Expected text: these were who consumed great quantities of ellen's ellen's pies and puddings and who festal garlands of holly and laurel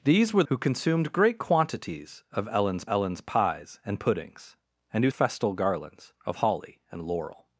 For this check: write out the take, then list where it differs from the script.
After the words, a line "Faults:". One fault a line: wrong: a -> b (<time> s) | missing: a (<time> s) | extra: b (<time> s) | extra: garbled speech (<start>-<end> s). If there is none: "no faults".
these were who consumed great quantities of ellen's ellen's pies and puddings and who festal garlands of holly and laurel
Faults:
no faults